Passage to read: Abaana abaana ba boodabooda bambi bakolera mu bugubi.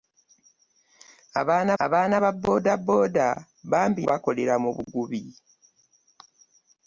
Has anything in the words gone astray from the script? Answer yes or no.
no